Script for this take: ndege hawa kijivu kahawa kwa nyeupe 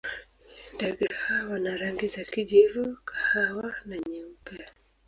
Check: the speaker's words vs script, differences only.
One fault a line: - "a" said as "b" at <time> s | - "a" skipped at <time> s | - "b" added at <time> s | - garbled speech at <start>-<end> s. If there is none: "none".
- "wana rangi za" added at 1.5 s
- "kwa" said as "na" at 3.9 s